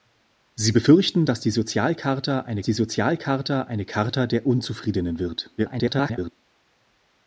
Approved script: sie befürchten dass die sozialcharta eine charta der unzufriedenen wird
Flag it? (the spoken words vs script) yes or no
yes